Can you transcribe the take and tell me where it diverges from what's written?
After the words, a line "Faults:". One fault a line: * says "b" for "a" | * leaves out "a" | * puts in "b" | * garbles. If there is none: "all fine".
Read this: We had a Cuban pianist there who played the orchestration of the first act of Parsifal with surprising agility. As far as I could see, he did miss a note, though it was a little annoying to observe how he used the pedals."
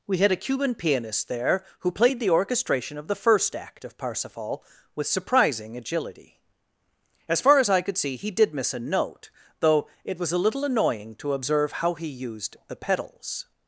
We had a Cuban pianist there who played the orchestration of the first act of Parsifal with surprising agility. As far as I could see, he did miss a note, though it was a little annoying to observe how he used the pedals."
Faults:
all fine